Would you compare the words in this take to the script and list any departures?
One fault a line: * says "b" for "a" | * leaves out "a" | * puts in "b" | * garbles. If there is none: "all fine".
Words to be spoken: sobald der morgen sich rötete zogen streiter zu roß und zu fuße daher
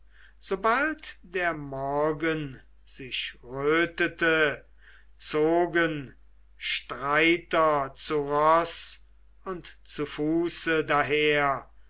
all fine